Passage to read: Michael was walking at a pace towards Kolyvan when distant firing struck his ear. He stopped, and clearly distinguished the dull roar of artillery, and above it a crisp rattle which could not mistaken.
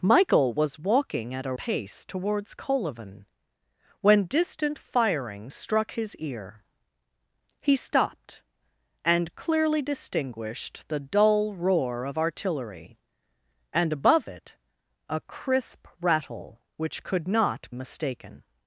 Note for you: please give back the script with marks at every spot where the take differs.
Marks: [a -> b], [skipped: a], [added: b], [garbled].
Michael was walking at a pace towards Kolyvan when distant firing struck his ear. He stopped, and clearly distinguished the dull roar of artillery, and above it a crisp rattle which could not mistaken.